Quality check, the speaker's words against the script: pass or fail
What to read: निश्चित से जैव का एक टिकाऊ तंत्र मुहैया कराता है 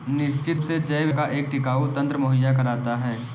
pass